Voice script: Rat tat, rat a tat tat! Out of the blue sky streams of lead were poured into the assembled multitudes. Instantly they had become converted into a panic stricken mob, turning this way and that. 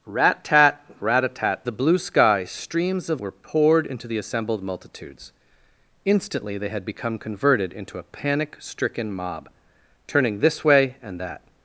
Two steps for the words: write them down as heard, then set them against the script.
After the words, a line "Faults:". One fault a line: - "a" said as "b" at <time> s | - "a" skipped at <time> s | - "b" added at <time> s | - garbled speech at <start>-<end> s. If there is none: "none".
Rat tat, rat a tat the blue sky streams of were poured into the assembled multitudes. Instantly they had become converted into a panic stricken mob, turning this way and that.
Faults:
- "tat Out of" skipped at 1.6 s
- "lead" skipped at 3.2 s